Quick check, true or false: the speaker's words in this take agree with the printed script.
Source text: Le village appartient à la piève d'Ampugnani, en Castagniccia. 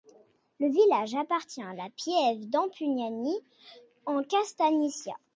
true